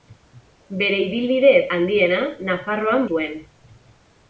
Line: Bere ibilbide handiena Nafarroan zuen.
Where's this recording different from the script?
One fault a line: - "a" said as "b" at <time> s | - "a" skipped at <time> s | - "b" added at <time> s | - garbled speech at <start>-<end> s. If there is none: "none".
none